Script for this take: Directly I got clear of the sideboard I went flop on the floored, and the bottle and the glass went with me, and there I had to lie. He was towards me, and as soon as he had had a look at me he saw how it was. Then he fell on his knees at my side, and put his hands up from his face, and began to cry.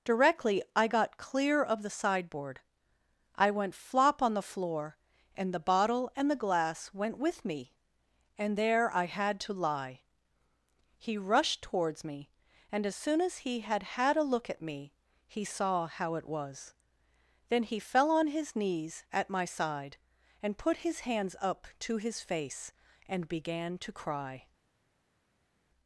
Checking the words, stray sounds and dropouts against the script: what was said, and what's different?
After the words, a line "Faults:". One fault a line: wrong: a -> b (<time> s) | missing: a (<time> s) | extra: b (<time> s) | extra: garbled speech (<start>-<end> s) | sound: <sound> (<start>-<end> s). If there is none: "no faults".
Directly I got clear of the sideboard I went flop on the floor, and the bottle and the glass went with me, and there I had to lie. He rushed towards me, and as soon as he had had a look at me he saw how it was. Then he fell on his knees at my side, and put his hands up to his face, and began to cry.
Faults:
wrong: floored -> floor (4.4 s)
wrong: was -> rushed (11.2 s)
wrong: from -> to (21.8 s)